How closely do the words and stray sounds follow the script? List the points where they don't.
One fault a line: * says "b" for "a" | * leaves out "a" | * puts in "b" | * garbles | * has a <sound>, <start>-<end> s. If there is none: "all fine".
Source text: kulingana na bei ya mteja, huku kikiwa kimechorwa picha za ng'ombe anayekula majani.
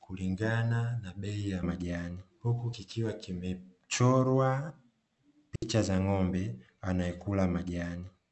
* says "majani" for "mteja"
* has a dropout, 5.6-5.6 s